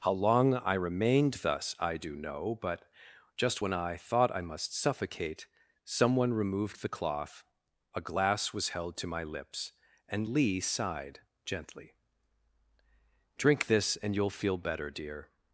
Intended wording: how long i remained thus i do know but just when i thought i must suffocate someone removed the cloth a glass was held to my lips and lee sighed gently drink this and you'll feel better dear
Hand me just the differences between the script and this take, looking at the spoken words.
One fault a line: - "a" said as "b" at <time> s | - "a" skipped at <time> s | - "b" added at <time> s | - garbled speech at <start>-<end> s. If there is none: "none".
none